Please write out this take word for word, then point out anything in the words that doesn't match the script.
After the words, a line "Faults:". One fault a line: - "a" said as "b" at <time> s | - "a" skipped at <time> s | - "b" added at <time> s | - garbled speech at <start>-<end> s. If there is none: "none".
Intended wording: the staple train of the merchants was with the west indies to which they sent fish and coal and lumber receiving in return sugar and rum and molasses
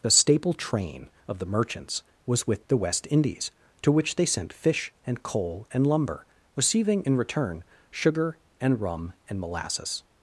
the staple train of the merchants was with the west indies to which they sent fish and coal and lumber receiving in return sugar and rum and molasses
Faults:
none